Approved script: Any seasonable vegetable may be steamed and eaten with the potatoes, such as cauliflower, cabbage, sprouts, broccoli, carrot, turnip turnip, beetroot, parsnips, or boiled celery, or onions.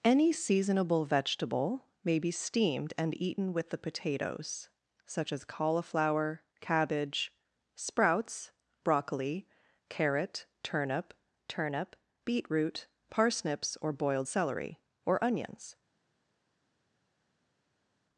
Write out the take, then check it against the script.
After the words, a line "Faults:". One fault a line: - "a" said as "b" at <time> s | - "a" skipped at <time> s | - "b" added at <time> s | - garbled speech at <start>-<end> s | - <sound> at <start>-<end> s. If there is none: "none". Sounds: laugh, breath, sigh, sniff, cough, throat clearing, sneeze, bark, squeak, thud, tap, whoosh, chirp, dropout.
Any seasonable vegetable may be steamed and eaten with the potatoes, such as cauliflower, cabbage, sprouts, broccoli, carrot, turnip turnip, beetroot, parsnips, or boiled celery, or onions.
Faults:
none